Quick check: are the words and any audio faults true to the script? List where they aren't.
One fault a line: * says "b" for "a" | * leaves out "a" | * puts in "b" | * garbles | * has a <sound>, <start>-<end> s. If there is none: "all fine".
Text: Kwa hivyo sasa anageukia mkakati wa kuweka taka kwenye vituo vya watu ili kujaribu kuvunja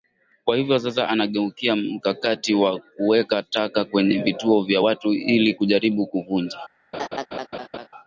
* has a laugh, 6.9-7.9 s